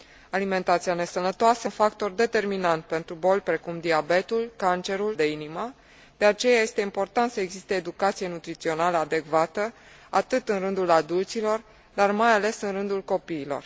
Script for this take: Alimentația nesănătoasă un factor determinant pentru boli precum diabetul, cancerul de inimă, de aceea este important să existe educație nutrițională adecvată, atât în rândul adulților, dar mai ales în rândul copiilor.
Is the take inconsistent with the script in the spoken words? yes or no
no